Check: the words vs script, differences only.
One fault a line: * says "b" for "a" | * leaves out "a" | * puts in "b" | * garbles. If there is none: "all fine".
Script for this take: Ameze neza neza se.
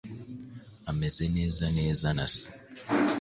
* puts in "na"